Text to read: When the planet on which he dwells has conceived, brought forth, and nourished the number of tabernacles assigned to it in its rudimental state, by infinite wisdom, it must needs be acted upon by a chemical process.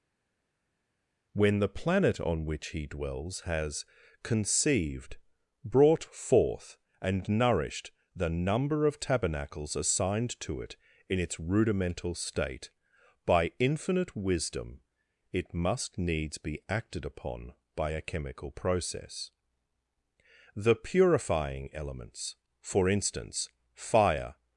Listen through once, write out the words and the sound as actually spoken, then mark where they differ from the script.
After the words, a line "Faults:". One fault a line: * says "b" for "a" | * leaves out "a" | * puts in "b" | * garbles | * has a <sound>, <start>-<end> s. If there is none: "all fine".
When the planet on which he dwells has conceived, brought forth, and nourished the number of tabernacles assigned to it in its rudimental state, by infinite wisdom, it must needs be acted upon by a chemical process. The purifying elements; for instance, fire
Faults:
* puts in "The purifying elements for instance fire"